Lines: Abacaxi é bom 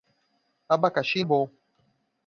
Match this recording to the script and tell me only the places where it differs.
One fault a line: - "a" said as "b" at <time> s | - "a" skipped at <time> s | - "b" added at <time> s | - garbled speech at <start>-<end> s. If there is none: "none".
none